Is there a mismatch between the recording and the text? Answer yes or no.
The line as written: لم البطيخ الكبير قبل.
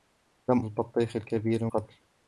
no